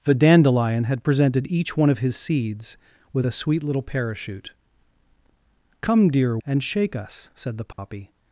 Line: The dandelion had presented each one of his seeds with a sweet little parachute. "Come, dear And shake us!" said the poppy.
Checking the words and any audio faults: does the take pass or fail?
fail